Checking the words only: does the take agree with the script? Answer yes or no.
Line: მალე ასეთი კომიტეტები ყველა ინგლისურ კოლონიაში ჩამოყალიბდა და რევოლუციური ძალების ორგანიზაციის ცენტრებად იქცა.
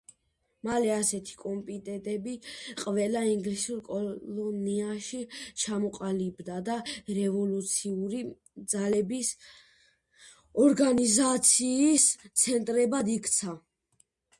yes